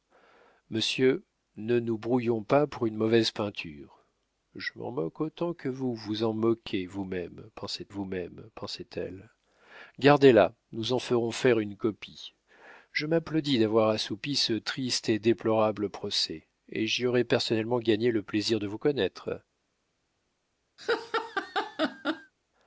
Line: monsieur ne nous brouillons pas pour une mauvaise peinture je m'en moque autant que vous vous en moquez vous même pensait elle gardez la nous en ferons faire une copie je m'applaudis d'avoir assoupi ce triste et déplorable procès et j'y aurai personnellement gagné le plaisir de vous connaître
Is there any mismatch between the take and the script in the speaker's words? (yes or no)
yes